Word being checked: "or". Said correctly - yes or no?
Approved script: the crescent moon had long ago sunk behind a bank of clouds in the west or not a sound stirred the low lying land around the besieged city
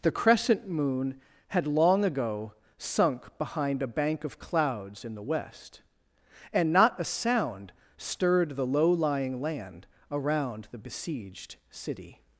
no